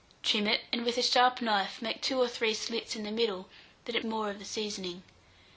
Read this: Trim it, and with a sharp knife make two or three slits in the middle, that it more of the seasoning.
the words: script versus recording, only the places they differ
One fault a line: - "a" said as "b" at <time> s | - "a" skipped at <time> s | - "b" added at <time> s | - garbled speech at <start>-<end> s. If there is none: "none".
none